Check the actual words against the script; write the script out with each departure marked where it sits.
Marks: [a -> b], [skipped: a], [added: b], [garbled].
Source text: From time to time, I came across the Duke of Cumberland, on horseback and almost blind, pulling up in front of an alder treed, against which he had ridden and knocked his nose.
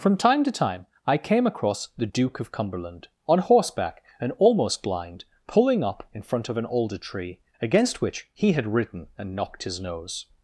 From time to time, I came across the Duke of Cumberland, on horseback and almost blind, pulling up in front of an alder [treed, -> tree] against which he had ridden and knocked his nose.